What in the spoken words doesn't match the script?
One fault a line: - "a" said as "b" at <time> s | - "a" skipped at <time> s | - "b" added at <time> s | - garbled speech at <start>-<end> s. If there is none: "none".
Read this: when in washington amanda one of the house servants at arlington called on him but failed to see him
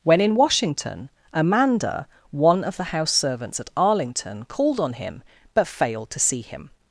none